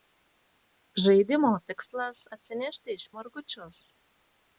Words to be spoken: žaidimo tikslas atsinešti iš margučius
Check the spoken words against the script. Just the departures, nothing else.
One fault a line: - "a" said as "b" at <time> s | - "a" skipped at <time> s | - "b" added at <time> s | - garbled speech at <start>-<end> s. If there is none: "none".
none